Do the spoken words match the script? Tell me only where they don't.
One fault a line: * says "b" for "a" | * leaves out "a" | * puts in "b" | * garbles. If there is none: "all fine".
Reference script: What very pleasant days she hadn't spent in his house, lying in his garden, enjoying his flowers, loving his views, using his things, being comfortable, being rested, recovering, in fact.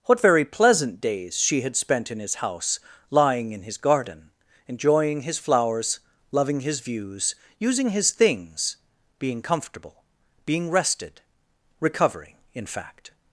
* says "had" for "hadn't"